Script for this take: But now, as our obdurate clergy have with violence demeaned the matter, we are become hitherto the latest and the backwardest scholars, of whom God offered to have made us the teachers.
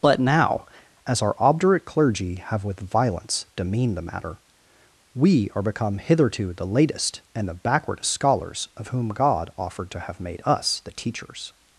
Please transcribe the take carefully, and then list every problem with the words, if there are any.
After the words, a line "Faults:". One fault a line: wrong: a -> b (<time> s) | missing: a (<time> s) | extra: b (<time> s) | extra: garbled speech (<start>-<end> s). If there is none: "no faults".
But now, as our obdurate clergy have with violence demeaned the matter, we are become hitherto the latest and the backwardest scholars, of whom God offered to have made us the teachers.
Faults:
no faults